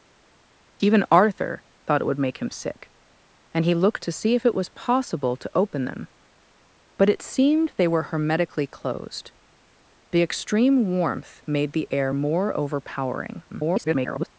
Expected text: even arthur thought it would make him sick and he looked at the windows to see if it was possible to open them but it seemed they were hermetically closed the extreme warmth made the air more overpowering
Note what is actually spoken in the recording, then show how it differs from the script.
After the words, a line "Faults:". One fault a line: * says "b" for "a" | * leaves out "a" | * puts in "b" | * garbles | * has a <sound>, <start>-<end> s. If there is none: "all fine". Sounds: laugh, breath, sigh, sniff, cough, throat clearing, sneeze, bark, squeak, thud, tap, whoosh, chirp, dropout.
even arthur thought it would make him sick and he looked to see if it was possible to open them but it seemed they were hermetically closed the extreme warmth made the air more overpowering [garbled]
Faults:
* leaves out "at the windows"
* garbles